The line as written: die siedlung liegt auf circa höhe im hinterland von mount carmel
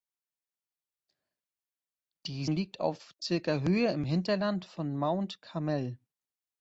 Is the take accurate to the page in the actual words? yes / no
no